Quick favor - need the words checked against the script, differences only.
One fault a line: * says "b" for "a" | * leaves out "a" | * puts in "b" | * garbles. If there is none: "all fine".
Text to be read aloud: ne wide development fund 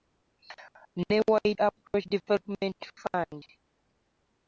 * puts in "approach"